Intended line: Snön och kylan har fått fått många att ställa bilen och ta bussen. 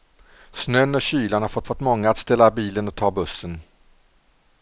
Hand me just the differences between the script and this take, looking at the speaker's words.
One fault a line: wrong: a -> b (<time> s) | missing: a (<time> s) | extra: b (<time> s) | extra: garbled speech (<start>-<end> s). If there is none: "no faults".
no faults